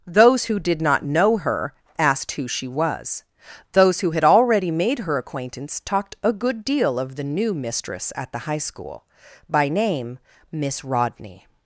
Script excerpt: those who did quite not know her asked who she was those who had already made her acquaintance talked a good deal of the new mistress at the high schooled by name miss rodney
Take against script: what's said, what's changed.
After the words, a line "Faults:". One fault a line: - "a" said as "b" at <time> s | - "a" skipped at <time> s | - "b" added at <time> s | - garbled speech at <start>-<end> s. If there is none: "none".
those who did not know her asked who she was those who had already made her acquaintance talked a good deal of the new mistress at the high school by name miss rodney
Faults:
- "quite" skipped at 0.8 s
- "schooled" said as "school" at 8.6 s